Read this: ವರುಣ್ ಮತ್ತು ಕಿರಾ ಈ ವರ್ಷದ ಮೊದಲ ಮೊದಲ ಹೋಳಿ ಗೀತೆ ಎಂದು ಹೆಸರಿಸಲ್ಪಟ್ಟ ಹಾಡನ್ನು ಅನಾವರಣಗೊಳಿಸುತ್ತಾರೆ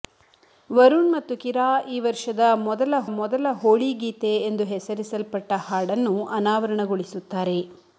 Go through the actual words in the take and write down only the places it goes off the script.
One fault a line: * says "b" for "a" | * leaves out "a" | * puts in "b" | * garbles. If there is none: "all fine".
all fine